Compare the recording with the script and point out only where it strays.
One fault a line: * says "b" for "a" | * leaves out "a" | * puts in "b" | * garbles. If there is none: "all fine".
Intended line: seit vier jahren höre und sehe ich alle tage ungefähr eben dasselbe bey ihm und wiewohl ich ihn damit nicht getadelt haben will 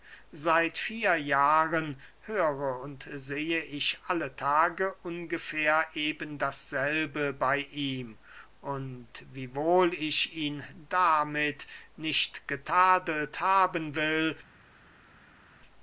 all fine